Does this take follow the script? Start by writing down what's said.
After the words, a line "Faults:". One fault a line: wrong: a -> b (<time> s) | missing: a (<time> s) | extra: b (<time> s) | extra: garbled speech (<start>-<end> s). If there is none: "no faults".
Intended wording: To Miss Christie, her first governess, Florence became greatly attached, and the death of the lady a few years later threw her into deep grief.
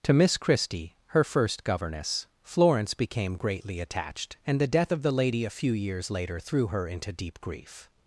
To Miss Christie, her first governess, Florence became greatly attached, and the death of the lady a few years later threw her into deep grief.
Faults:
no faults